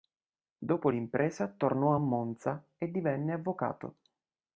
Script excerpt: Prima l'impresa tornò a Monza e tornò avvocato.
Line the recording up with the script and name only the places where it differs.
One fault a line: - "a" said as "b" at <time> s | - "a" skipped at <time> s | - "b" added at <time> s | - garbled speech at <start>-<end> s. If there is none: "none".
- "Prima" said as "Dopo" at 0.6 s
- "tornò" said as "divenne" at 2.9 s